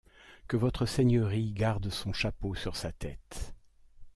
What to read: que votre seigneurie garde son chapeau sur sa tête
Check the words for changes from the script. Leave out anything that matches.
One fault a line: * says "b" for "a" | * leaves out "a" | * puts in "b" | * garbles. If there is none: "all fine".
all fine